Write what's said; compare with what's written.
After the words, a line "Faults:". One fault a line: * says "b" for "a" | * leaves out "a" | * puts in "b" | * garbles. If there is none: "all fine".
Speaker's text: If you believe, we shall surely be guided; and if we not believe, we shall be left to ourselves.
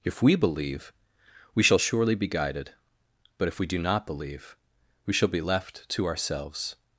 If we believe, we shall surely be guided; but if we do not believe, we shall be left to ourselves.
Faults:
* says "we" for "you"
* says "but" for "and"
* puts in "do"